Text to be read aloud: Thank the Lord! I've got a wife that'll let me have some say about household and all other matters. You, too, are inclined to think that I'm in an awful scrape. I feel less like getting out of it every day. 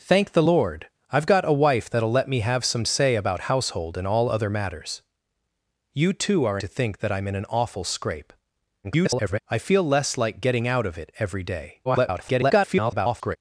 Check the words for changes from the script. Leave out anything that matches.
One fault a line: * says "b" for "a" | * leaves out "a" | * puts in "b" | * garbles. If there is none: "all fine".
* leaves out "inclined"
* garbles
* garbles